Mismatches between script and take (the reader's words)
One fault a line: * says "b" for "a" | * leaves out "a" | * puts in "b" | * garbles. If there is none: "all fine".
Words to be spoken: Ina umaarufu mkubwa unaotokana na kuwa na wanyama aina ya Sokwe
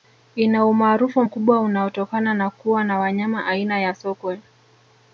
all fine